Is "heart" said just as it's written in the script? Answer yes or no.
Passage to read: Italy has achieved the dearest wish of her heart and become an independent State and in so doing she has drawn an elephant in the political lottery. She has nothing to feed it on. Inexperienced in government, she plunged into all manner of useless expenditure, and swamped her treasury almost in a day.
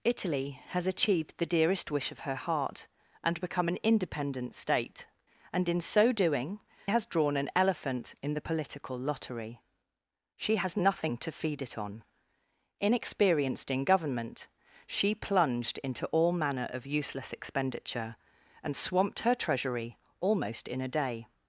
yes